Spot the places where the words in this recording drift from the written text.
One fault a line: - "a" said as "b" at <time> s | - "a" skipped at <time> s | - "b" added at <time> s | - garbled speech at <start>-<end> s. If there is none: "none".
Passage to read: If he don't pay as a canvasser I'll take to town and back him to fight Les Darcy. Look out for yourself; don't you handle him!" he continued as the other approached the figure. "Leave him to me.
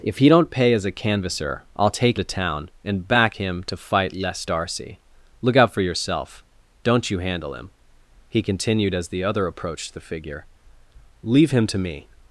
none